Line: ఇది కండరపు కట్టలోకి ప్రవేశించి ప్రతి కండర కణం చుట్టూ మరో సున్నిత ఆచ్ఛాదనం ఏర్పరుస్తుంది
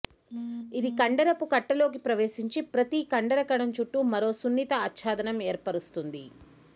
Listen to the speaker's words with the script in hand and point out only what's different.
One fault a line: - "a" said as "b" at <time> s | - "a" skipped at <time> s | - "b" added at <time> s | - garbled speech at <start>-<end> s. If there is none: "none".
none